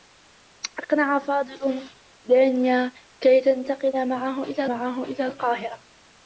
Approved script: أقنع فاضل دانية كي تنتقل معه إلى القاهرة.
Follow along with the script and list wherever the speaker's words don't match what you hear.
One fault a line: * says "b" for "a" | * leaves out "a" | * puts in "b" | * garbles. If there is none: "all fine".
* puts in "معه إلى"